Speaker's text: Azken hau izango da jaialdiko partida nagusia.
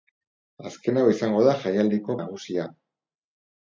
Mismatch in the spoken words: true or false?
true